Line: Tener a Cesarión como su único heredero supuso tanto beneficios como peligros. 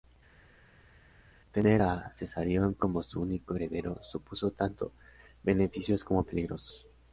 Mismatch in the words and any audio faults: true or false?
false